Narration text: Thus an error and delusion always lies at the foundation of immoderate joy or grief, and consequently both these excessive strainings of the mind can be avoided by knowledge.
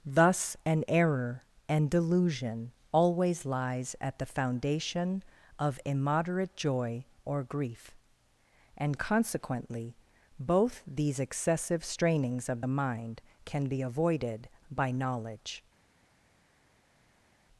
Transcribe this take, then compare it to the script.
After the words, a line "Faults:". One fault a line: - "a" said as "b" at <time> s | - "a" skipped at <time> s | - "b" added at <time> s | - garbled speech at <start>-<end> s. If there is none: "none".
Thus an error and delusion always lies at the foundation of immoderate joy or grief, and consequently both these excessive strainings of the mind can be avoided by knowledge.
Faults:
none